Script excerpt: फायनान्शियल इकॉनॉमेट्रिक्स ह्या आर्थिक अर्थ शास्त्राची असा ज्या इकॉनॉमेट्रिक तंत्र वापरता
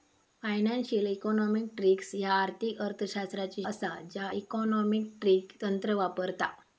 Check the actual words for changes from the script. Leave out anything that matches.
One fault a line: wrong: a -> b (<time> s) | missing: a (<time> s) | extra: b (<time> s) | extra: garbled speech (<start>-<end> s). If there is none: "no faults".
no faults